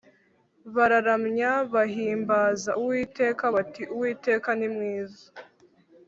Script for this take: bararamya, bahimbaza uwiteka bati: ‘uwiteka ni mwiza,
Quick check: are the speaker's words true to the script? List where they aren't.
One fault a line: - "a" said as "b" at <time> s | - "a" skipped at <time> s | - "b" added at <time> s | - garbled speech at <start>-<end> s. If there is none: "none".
none